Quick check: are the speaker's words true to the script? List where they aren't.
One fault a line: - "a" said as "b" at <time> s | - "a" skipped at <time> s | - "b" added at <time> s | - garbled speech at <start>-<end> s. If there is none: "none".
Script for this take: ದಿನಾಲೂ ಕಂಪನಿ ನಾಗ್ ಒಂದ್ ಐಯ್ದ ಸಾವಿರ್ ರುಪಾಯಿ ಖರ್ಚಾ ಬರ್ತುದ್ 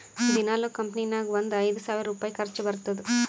none